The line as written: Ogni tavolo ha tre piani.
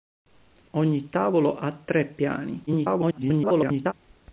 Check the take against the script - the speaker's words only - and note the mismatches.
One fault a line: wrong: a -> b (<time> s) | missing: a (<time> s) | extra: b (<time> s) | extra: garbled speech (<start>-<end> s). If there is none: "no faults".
extra: garbled speech (2.7-3.9 s)